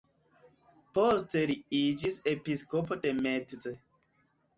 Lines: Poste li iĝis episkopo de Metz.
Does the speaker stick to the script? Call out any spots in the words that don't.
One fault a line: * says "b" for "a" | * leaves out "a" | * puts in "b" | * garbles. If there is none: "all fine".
all fine